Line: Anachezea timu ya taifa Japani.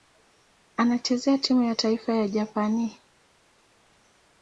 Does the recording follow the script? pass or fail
fail